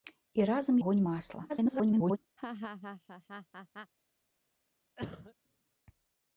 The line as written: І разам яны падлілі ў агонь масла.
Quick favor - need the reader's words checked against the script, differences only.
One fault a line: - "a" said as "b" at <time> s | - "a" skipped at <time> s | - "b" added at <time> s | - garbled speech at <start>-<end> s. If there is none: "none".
- "яны падлілі ў" skipped at 0.8 s
- garbled speech at 1.5-2.2 s